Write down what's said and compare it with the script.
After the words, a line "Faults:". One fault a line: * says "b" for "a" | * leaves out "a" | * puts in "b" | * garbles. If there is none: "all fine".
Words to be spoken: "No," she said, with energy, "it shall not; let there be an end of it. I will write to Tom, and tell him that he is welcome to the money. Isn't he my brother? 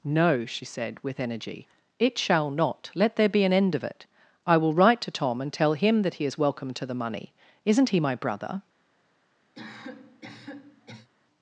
"No," she said, with energy, "it shall not; let there be an end of it. I will write to Tom, and tell him that he is welcome to the money. Isn't he my brother?
Faults:
all fine